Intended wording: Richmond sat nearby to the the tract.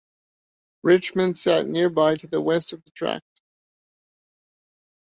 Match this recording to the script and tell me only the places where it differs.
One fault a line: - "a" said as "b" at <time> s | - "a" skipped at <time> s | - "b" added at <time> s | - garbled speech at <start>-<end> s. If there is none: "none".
- "west of" added at 2.4 s